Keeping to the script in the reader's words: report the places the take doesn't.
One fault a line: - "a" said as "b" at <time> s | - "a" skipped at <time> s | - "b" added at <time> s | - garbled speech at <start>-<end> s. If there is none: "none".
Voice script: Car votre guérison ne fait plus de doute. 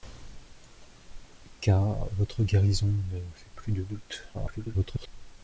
- garbled speech at 4.3-5.1 s